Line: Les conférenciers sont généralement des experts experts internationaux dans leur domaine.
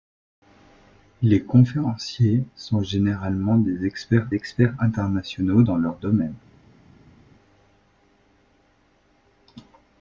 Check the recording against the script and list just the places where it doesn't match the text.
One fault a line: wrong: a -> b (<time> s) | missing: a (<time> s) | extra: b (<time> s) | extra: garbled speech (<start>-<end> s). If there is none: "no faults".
no faults